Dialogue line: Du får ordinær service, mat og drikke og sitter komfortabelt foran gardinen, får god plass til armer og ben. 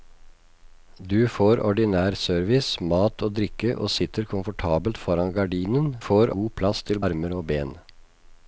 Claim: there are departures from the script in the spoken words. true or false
false